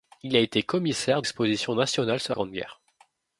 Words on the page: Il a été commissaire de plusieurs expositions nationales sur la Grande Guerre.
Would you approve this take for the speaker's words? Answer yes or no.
no